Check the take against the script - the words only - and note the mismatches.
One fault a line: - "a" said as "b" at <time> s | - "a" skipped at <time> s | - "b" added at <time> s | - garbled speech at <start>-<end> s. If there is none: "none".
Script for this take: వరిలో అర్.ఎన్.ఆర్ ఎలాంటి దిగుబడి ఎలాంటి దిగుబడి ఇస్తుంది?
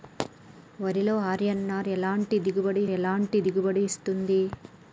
none